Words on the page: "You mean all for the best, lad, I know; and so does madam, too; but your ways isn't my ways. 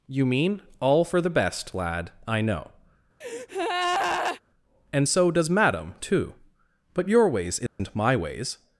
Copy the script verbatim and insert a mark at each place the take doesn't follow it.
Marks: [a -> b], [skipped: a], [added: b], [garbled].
"You mean all for the best, lad, I know; and so does madam, too; but your ways isn't my ways.